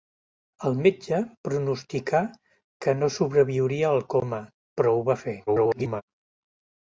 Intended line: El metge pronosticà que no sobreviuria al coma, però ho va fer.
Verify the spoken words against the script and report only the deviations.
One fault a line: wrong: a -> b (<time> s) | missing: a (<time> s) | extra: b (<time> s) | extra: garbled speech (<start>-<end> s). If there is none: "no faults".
extra: garbled speech (5.5-6.0 s)